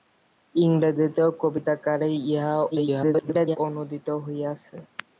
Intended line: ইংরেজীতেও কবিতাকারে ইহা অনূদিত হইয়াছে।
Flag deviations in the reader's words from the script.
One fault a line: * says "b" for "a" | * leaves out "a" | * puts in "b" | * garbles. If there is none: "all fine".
* garbles